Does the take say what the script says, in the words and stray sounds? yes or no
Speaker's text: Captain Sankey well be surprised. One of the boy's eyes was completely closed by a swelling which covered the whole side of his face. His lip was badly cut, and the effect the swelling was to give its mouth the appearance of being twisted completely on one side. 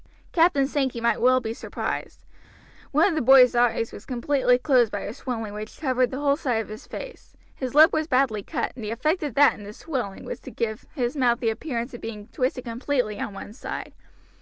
no